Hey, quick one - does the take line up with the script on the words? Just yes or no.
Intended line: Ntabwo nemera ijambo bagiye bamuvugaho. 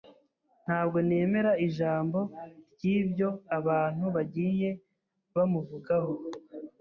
no